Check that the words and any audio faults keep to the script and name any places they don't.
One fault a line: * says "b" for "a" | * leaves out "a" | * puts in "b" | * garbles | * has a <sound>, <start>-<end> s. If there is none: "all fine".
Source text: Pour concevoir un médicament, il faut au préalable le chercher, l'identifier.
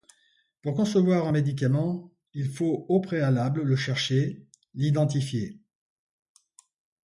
all fine